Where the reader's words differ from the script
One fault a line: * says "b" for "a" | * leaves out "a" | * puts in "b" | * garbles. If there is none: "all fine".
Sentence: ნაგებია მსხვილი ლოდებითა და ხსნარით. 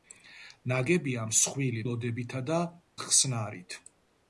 all fine